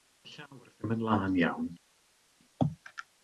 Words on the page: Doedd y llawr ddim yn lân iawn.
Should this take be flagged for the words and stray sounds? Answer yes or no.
no